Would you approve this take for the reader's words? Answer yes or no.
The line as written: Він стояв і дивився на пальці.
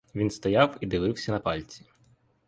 yes